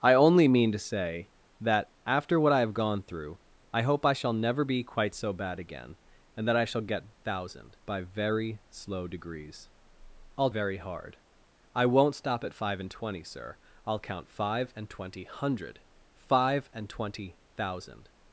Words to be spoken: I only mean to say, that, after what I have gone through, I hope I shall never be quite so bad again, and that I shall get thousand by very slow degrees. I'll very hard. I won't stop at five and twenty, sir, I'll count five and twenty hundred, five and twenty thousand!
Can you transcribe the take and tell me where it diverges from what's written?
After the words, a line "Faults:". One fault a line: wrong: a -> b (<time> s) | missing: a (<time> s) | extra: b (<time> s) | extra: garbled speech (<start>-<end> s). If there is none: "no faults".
I only mean to say, that, after what I have gone through, I hope I shall never be quite so bad again, and that I shall get thousand by very slow degrees. I'll very hard. I won't stop at five and twenty, sir, I'll count five and twenty hundred, five and twenty thousand!
Faults:
no faults